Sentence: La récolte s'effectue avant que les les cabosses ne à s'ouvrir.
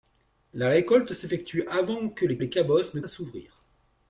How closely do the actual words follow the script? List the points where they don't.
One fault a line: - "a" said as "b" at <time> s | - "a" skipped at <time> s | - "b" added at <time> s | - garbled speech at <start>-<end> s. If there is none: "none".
none